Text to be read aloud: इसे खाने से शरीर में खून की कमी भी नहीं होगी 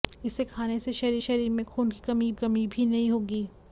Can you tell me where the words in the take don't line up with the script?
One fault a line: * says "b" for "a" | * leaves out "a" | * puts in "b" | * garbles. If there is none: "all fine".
* puts in "शरीर"
* puts in "कमी"